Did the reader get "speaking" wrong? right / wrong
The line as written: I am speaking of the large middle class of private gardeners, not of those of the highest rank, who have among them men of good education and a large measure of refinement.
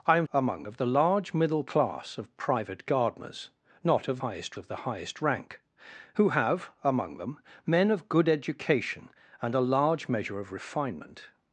wrong